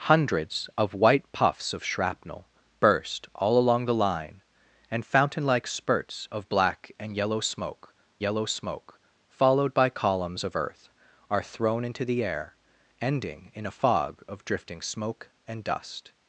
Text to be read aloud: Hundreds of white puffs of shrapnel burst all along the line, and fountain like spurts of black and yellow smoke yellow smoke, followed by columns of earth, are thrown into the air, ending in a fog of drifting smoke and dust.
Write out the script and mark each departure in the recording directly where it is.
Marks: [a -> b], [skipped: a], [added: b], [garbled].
Hundreds of white puffs of shrapnel burst all along the line, and fountain like spurts of black and yellow smoke yellow smoke, followed by columns of earth, are thrown into the air, ending in a fog of drifting smoke and dust.